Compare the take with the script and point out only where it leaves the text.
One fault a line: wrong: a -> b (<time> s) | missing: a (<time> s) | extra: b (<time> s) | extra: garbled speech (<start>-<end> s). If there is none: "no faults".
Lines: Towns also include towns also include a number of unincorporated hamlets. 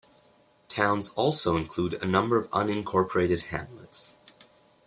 missing: towns also include (1.9 s)